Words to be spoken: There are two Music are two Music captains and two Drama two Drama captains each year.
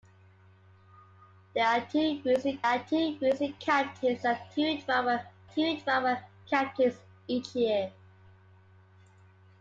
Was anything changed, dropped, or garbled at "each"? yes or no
no